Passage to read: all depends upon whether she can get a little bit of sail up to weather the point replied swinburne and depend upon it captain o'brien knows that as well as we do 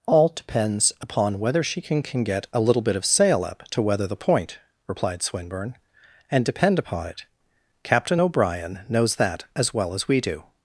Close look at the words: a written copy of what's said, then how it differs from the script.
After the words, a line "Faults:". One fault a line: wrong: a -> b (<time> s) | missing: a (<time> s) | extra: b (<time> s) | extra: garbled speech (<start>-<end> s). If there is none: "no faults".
all depends upon whether she can can get a little bit of sail up to weather the point replied swinburne and depend upon it captain o'brien knows that as well as we do
Faults:
extra: can (2.0 s)